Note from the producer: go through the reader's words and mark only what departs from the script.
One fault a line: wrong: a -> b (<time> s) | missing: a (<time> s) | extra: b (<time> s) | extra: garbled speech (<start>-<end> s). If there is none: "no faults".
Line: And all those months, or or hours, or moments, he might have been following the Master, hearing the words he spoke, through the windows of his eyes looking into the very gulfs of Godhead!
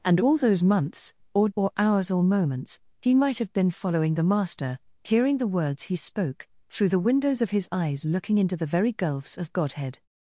no faults